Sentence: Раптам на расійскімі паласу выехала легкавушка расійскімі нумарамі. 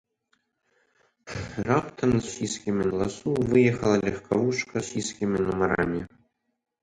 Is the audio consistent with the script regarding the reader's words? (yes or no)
yes